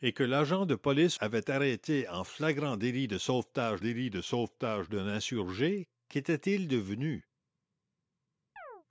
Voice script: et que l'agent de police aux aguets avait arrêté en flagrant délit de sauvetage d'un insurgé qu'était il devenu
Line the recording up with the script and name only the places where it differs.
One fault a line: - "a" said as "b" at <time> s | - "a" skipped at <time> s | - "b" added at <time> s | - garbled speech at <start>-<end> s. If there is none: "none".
- "aux aguets" skipped at 1.2 s
- "délit de sauvetage" added at 3.8 s